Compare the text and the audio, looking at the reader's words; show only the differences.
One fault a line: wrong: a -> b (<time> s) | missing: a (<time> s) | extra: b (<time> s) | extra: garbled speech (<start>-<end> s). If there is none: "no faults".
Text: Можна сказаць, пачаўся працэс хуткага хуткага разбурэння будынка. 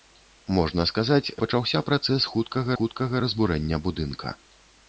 no faults